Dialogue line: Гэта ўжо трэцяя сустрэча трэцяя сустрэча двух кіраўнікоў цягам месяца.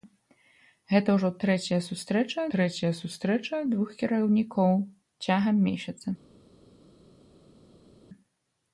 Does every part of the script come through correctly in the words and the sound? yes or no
yes